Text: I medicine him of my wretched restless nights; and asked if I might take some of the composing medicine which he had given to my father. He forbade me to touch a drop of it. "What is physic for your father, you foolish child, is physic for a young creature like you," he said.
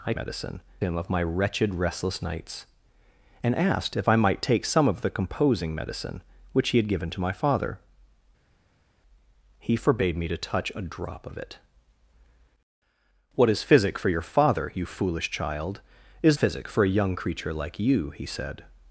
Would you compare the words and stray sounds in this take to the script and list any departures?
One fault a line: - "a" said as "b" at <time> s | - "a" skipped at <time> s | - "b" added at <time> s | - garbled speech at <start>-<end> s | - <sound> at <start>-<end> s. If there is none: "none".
none